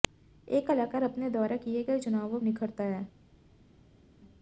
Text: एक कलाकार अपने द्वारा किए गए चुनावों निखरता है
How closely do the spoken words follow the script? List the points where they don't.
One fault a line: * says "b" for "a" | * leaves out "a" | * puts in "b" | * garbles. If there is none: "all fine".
all fine